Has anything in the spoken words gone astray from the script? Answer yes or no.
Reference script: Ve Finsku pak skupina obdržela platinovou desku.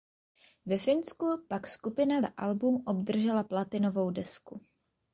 yes